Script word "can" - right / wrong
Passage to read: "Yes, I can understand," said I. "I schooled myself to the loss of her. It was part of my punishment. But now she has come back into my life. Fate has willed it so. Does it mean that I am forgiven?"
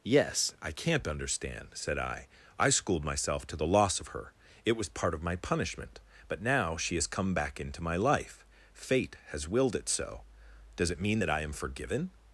wrong